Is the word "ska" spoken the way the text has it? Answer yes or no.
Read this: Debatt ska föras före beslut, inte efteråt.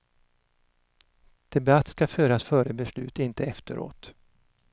yes